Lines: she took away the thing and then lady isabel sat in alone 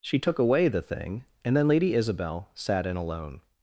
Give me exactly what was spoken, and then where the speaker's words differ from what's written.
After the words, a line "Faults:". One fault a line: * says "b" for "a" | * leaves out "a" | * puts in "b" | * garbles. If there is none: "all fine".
she took away the thing and then lady isabel sat in alone
Faults:
all fine